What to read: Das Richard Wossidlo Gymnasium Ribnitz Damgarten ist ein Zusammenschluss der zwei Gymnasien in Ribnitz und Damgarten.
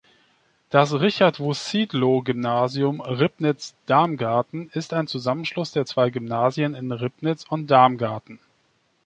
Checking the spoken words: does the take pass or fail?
pass